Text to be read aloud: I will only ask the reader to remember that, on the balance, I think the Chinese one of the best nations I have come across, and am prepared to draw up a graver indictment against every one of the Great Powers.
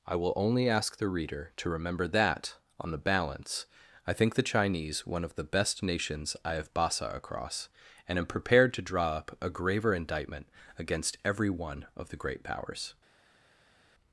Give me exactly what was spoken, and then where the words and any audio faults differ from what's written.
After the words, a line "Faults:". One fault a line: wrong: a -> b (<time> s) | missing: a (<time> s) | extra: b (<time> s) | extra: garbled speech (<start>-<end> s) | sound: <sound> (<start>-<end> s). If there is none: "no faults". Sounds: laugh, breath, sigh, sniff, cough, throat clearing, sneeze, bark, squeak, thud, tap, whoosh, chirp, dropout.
I will only ask the reader to remember that, on the balance, I think the Chinese one of the best nations I have basa across, and am prepared to draw up a graver indictment against every one of the Great Powers.
Faults:
wrong: come -> basa (6.7 s)